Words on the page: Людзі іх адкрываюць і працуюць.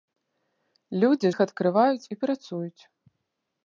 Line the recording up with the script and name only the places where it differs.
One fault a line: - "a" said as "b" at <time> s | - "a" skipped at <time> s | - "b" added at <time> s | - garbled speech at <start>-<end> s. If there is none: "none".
none